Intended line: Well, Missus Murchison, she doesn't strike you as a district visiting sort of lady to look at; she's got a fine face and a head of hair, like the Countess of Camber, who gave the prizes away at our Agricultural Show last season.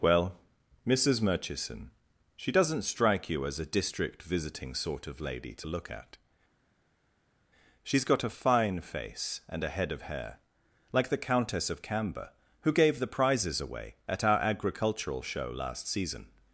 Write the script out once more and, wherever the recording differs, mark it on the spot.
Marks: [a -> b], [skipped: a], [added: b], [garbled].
Well, Missus Murchison, she doesn't strike you as a district visiting sort of lady to look at; she's got a fine face and a head of hair, like the Countess of Camber, who gave the prizes away at our Agricultural Show last season.